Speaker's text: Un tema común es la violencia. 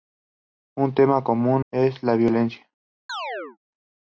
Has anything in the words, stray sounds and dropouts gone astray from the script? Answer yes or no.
yes